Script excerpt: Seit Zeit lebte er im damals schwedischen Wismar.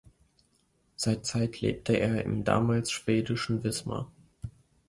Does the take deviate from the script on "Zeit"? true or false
false